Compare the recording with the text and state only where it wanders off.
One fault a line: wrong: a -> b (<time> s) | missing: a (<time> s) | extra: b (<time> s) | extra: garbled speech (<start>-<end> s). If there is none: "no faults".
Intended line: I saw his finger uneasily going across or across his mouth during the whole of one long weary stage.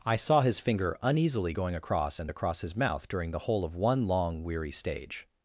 wrong: or -> and (2.2 s)